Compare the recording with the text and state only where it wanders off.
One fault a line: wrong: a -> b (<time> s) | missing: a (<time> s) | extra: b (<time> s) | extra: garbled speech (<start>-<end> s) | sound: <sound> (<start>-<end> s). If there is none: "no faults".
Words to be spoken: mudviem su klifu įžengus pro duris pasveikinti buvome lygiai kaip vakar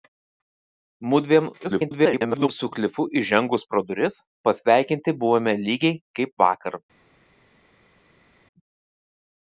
extra: garbled speech (1.6-2.5 s)